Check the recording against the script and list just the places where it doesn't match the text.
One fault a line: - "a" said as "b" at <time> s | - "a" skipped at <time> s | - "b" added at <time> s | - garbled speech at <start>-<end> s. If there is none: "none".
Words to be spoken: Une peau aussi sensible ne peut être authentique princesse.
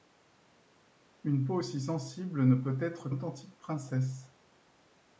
none